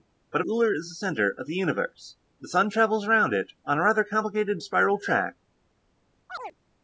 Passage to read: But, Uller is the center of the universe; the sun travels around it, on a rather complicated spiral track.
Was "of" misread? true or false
false